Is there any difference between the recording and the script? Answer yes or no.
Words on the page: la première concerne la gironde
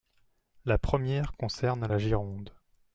no